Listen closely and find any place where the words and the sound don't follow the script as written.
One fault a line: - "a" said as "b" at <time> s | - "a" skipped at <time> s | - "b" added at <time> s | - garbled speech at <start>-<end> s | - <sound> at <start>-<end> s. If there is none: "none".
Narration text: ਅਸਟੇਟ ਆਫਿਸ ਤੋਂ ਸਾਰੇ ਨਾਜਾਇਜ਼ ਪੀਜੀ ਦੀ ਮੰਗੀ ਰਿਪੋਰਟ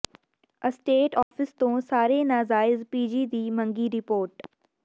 - dropout at 1.2-1.3 s